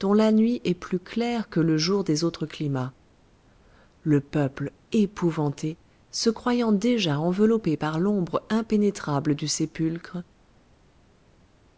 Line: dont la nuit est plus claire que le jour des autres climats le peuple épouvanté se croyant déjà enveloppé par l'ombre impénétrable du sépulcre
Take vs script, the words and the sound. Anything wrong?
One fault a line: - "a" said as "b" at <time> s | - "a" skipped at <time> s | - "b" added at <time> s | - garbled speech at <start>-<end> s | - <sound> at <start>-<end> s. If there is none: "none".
none